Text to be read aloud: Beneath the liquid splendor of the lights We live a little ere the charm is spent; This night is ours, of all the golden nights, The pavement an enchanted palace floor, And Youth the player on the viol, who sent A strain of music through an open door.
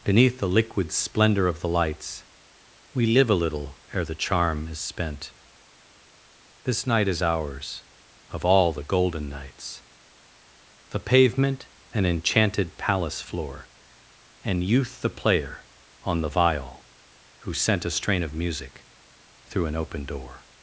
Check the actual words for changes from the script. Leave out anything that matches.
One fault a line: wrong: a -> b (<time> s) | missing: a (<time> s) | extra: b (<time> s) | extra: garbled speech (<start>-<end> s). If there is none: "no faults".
no faults